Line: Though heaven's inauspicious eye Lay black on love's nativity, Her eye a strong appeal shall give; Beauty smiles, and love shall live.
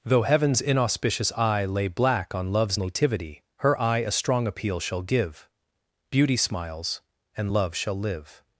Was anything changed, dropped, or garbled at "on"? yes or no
no